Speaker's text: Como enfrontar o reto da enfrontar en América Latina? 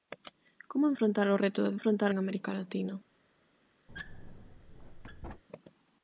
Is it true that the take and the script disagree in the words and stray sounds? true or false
true